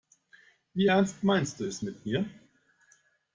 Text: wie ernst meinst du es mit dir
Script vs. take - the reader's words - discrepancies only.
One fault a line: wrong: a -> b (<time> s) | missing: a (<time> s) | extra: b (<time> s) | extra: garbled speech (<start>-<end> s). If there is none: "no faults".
wrong: dir -> mir (2.0 s)